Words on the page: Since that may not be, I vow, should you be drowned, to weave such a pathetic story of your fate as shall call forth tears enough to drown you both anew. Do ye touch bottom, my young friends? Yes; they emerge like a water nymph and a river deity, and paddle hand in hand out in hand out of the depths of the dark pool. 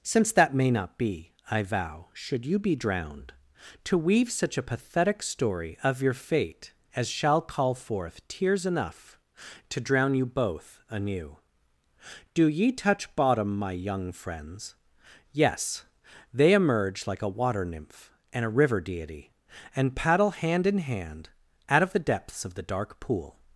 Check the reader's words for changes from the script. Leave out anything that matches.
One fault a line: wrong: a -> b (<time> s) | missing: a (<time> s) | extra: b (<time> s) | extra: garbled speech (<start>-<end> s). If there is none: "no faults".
missing: in hand out (21.8 s)